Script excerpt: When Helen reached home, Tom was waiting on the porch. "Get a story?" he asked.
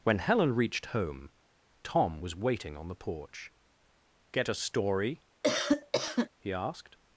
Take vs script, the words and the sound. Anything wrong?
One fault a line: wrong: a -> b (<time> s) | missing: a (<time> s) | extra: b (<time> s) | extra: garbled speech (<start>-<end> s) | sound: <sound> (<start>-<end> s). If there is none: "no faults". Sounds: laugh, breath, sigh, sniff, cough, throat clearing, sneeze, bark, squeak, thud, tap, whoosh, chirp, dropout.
sound: cough (5.4-6.3 s)